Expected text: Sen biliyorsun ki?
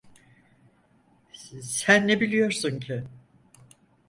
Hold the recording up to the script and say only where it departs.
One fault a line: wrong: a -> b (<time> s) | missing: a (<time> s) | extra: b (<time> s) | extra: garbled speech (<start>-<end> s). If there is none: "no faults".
extra: ne (2.1 s)